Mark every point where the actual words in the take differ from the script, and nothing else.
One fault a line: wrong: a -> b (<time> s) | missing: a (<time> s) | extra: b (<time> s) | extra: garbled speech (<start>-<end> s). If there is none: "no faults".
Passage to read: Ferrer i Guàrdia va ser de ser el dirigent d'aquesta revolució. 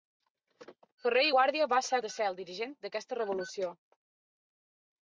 no faults